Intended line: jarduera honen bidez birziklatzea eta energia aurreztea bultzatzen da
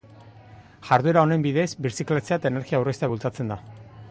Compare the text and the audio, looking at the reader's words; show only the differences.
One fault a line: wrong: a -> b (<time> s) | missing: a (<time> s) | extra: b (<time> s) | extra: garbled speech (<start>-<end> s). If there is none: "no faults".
no faults